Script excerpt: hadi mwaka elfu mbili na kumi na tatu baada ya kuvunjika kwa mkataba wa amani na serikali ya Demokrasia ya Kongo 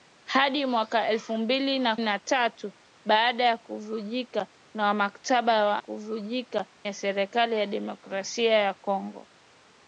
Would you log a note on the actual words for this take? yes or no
yes